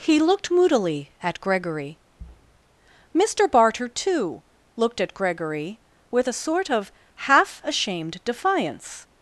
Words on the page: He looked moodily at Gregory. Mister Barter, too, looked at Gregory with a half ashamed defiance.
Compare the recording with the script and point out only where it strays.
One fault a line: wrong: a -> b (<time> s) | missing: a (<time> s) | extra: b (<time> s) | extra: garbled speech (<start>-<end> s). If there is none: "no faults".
extra: sort of (6.4 s)